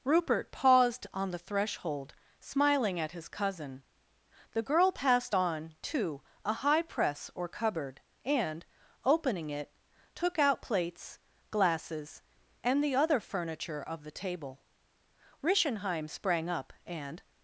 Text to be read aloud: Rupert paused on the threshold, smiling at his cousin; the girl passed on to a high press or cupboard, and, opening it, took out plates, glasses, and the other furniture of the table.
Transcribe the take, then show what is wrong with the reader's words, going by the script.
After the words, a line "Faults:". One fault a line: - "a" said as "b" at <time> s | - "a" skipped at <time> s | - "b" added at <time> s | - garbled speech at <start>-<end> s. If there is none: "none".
Rupert paused on the threshold, smiling at his cousin; the girl passed on to a high press or cupboard, and, opening it, took out plates, glasses, and the other furniture of the table. Rischenheim sprang up and
Faults:
- "Rischenheim sprang up and" added at 15.4 s